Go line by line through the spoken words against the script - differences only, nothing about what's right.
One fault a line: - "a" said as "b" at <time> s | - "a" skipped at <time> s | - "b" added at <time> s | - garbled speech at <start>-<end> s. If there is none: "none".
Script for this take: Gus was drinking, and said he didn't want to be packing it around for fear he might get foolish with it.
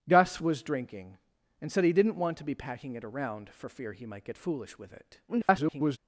- garbled speech at 5.3-6.0 s